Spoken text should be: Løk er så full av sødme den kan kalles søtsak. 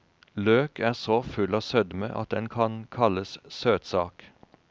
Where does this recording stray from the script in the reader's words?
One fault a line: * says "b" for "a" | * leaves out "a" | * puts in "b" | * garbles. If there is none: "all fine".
* puts in "at"